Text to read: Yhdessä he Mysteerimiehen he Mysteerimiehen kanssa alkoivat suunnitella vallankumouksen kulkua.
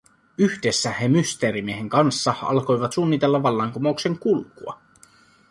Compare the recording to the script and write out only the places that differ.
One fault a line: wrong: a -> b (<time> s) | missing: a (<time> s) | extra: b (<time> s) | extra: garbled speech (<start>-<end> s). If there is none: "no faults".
missing: he Mysteerimiehen (1.9 s)